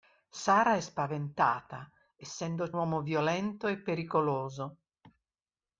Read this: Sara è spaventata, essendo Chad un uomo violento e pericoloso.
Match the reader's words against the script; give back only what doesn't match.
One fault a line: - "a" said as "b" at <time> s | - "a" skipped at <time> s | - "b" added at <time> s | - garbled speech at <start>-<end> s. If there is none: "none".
- "Chad un" skipped at 2.7 s